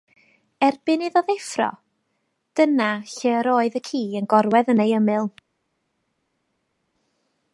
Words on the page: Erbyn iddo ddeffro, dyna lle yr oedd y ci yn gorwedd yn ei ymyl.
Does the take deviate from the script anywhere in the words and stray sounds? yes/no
no